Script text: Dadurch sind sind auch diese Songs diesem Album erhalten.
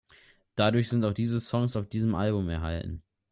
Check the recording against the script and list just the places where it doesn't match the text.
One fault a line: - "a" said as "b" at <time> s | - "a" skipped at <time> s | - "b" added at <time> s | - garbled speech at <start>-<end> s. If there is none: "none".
- "sind" skipped at 1.1 s
- "auf" added at 1.7 s